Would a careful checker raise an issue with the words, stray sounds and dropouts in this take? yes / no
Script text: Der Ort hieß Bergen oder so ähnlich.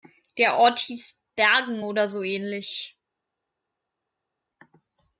no